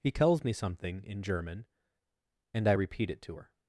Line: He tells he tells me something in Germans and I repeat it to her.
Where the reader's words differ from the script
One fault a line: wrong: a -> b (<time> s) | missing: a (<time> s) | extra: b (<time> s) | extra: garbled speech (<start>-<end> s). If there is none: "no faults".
missing: he tells (0.4 s)
wrong: Germans -> German (1.2 s)